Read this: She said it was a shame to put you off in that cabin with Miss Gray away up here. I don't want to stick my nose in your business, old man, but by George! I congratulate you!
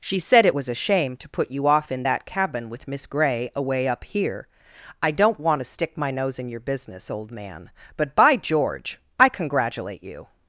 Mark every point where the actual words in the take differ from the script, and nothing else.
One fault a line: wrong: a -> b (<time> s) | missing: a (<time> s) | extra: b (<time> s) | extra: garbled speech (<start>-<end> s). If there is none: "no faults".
no faults